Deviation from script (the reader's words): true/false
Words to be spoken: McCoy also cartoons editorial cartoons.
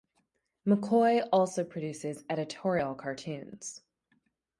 true